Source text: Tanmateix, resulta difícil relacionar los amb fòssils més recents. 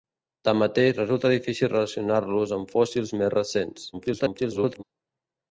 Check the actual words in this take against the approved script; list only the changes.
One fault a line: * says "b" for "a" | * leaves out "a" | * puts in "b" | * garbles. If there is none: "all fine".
* garbles